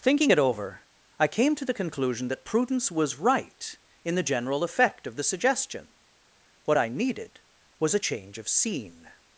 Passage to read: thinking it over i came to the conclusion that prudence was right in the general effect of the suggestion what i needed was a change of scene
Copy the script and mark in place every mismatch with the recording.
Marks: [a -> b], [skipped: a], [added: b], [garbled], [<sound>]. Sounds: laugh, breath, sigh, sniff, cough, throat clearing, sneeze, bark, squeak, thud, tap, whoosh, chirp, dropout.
thinking it over i came to the conclusion that prudence was right in the general effect of the suggestion what i needed was a change of scene